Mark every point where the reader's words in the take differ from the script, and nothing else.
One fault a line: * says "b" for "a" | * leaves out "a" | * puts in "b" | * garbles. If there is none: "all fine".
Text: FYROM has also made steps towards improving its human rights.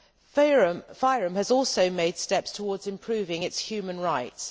all fine